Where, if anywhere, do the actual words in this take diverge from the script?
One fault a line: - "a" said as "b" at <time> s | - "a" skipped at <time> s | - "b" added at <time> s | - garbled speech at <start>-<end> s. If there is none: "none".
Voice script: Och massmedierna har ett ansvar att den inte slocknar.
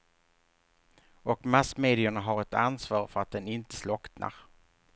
- "för" added at 3.1 s